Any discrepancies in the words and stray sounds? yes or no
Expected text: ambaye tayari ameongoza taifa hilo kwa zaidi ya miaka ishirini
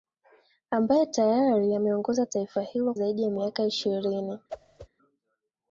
yes